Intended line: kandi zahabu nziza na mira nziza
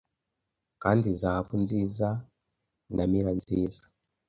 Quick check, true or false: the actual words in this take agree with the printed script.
true